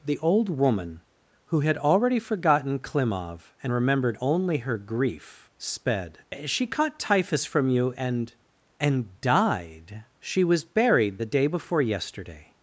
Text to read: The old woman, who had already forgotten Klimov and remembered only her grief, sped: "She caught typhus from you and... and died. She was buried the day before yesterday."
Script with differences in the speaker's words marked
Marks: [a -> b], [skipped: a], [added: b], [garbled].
The old woman, who had already forgotten Klimov and remembered only her grief, sped: "She caught typhus from you and... and died. She was buried the day before yesterday."